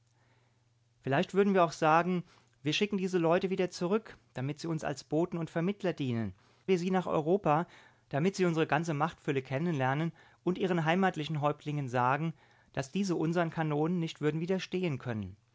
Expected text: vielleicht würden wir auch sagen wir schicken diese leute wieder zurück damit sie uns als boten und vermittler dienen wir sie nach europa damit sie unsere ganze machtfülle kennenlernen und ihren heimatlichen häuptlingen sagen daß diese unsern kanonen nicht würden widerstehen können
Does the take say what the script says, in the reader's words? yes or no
yes